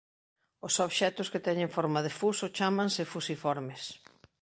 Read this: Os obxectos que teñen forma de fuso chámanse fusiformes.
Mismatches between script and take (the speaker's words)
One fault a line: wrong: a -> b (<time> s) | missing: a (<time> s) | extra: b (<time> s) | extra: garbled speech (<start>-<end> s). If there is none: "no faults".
no faults